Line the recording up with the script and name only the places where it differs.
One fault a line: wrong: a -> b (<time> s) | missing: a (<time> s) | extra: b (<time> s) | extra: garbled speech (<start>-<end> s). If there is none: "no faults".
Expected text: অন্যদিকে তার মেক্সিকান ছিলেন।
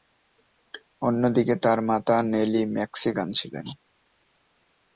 extra: মাতা নেলি (1.9 s)